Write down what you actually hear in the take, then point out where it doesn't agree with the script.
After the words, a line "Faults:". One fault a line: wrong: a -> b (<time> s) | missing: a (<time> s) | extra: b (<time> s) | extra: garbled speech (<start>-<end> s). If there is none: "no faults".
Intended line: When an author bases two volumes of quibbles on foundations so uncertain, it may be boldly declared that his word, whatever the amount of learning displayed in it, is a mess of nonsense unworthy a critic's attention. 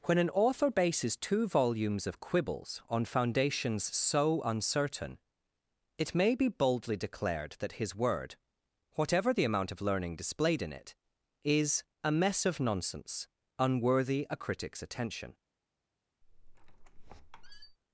When an author bases two volumes of quibbles on foundations so uncertain, it may be boldly declared that his word, whatever the amount of learning displayed in it, is a mess of nonsense unworthy a critic's attention.
Faults:
no faults